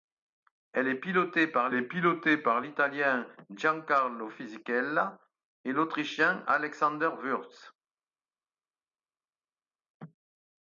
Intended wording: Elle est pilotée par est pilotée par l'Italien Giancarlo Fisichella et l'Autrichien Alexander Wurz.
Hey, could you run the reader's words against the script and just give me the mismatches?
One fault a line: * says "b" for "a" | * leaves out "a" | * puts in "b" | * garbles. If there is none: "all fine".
all fine